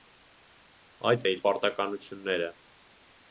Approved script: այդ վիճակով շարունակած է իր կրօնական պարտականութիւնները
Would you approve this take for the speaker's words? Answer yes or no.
no